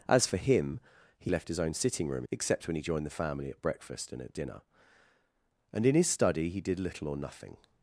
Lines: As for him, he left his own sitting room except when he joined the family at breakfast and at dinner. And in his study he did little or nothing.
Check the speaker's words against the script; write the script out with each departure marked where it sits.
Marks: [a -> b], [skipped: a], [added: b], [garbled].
As for him, he left his own sitting room except when he joined the family at breakfast and at dinner. And in his study he did little or nothing.